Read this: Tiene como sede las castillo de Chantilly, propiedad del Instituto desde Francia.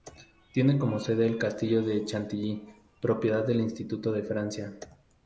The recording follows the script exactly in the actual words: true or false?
false